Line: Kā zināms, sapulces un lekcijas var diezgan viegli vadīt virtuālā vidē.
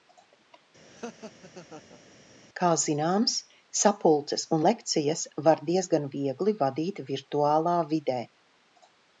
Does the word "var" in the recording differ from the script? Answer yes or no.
no